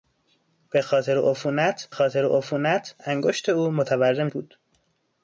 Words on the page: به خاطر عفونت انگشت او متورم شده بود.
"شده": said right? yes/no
no